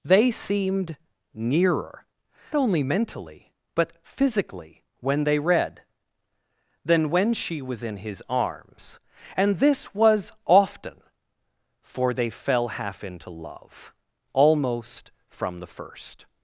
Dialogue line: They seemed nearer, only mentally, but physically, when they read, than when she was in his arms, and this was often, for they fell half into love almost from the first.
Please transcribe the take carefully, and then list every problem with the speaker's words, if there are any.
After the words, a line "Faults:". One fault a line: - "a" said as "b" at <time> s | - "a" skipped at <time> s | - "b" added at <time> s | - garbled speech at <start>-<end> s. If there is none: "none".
They seemed nearer, only mentally, but physically, when they read, than when she was in his arms, and this was often, for they fell half into love almost from the first.
Faults:
none